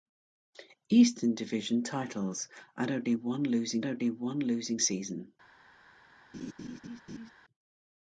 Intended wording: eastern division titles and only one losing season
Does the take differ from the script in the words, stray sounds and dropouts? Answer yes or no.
yes